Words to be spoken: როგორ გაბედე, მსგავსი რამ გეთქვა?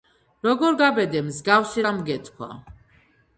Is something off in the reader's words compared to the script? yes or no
no